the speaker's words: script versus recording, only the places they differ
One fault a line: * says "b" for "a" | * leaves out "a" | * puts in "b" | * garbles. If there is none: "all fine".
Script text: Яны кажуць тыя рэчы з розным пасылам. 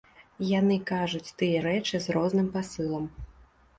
all fine